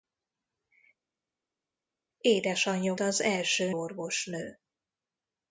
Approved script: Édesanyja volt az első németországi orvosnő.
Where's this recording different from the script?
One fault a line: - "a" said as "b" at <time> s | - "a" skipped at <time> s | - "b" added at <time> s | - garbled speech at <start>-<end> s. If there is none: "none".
- "volt" skipped at 2.9 s
- "németországi" skipped at 3.7 s